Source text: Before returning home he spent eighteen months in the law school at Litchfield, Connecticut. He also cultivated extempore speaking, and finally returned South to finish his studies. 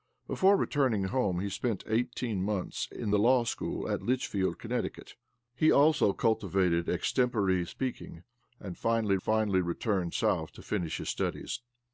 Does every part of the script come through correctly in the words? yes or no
no